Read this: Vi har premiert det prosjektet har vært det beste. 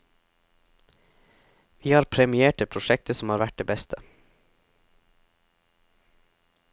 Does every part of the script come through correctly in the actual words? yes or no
no